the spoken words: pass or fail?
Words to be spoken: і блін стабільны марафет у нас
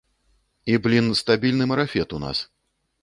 pass